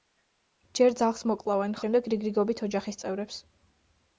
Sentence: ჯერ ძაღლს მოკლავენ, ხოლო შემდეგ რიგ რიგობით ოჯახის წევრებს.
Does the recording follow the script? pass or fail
fail